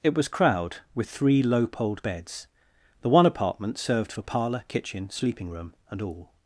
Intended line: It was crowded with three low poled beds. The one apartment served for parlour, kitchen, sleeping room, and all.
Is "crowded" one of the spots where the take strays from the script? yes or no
yes